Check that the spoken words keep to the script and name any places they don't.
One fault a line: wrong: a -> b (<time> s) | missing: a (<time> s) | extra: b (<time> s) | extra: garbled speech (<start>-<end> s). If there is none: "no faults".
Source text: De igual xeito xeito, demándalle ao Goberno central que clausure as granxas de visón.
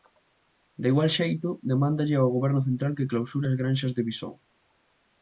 missing: xeito (1.5 s)